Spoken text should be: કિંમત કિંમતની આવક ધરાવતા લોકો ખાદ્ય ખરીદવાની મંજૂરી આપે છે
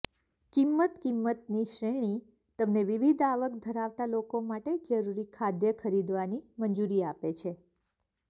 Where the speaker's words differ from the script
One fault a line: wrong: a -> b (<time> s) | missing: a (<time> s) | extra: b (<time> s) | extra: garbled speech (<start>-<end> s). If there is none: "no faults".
extra: શ્રેણી તમને વિવિધ (1.7 s)
extra: માટે જરૂરી (4.5 s)